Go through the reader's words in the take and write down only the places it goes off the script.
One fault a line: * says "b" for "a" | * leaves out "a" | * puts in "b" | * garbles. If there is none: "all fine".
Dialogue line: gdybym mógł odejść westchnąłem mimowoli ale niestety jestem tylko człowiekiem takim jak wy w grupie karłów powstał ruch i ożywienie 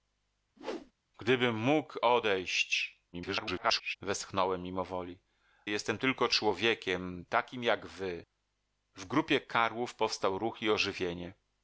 * garbles
* leaves out "ale niestety"